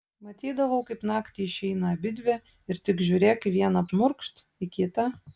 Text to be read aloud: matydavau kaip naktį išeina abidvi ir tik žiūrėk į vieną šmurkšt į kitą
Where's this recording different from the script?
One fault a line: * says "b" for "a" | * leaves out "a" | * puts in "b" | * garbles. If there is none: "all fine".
all fine